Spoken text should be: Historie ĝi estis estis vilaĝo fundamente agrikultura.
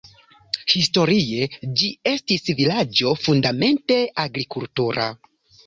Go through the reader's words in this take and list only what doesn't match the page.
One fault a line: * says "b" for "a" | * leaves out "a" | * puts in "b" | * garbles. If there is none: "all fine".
* leaves out "estis"